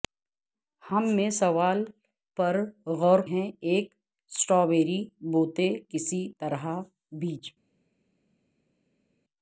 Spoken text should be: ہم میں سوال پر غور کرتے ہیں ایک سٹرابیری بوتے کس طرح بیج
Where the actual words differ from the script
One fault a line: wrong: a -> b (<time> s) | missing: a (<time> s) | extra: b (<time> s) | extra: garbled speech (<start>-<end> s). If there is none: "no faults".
missing: کرتے (3.2 s)